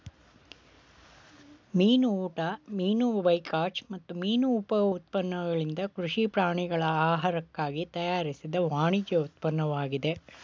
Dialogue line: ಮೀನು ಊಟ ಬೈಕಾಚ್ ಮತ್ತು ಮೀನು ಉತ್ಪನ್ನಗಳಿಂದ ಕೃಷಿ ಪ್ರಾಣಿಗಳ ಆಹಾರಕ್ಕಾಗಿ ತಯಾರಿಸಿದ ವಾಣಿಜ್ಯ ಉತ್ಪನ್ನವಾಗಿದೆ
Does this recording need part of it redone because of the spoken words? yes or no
yes